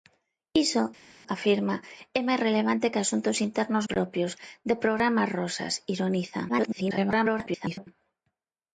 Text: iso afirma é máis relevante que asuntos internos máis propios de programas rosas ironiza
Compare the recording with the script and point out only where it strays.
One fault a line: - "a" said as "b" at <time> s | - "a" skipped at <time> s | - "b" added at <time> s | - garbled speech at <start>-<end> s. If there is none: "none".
- "máis" skipped at 3.9 s
- garbled speech at 6.5-7.9 s